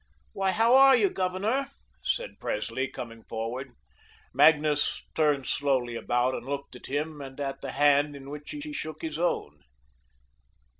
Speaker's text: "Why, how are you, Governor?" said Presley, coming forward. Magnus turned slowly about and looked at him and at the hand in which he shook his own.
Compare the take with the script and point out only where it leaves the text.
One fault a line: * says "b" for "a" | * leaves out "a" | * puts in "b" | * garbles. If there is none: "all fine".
* puts in "he"